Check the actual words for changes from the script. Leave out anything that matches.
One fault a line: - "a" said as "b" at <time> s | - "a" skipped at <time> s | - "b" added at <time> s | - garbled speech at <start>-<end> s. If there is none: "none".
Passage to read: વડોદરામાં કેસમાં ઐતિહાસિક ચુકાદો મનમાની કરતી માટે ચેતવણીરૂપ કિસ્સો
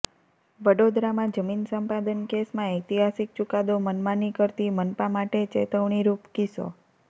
- "જમીન સંપાદન" added at 1.4 s
- "મનપા" added at 4.8 s